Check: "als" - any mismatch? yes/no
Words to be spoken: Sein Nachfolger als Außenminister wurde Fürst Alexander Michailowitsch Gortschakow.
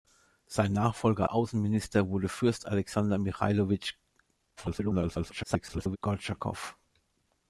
yes